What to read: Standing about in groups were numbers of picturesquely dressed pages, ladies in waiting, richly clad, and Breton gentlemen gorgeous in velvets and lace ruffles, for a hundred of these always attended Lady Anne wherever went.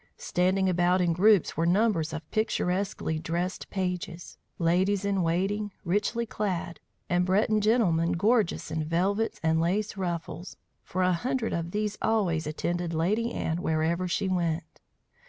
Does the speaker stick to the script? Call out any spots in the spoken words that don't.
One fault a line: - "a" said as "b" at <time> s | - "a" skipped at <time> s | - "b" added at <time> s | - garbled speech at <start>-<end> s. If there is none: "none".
- "she" added at 14.1 s